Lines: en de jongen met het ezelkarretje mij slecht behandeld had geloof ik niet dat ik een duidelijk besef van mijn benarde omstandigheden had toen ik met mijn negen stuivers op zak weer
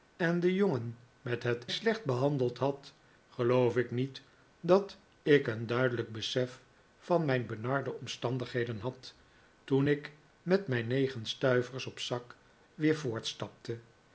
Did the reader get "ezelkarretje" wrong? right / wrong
wrong